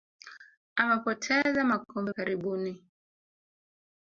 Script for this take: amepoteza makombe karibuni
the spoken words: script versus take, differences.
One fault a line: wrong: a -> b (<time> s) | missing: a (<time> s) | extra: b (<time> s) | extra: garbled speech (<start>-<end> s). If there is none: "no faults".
no faults